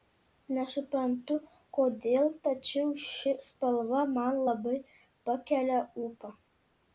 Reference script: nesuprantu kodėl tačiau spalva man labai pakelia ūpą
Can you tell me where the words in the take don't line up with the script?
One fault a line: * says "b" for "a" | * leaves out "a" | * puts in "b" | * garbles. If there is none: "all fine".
* puts in "ši"